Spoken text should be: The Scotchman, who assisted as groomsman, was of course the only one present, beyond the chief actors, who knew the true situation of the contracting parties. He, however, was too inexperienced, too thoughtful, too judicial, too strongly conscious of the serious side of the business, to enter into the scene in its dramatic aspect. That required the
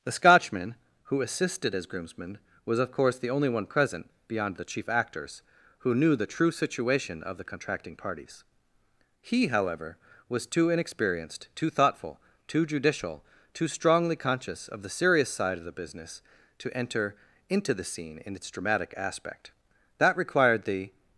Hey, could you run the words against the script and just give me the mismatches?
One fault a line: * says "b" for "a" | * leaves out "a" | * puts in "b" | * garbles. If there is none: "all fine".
all fine